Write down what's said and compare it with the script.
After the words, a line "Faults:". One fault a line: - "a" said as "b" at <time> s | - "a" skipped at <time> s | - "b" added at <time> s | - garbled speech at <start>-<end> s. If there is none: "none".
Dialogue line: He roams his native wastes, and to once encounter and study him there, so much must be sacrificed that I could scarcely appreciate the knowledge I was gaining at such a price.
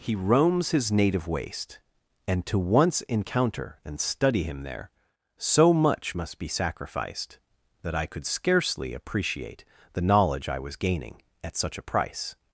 He roams his native waste, and to once encounter and study him there, so much must be sacrificed that I could scarcely appreciate the knowledge I was gaining at such a price.
Faults:
- "wastes" said as "waste" at 1.3 s